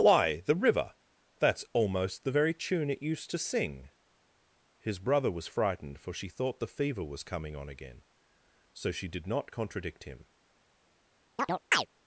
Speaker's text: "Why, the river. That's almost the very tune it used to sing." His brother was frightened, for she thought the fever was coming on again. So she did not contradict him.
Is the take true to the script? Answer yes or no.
yes